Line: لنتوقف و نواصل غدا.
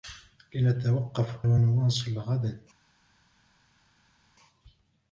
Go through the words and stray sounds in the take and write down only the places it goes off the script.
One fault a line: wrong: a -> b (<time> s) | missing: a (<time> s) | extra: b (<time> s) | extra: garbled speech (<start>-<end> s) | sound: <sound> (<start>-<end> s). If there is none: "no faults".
no faults